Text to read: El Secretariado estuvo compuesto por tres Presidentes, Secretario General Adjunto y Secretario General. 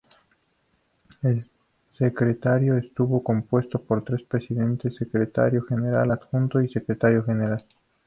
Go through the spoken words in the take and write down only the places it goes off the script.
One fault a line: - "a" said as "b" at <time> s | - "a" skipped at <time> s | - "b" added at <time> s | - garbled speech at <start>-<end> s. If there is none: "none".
none